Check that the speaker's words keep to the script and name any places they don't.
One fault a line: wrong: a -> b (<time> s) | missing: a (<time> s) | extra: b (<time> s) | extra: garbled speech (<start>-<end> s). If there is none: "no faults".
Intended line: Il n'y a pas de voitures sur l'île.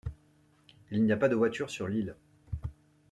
no faults